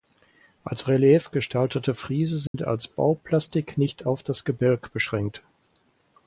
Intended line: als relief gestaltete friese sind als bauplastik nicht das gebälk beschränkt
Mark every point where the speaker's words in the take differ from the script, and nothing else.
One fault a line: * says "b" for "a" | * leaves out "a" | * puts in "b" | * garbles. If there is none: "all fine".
* puts in "auf"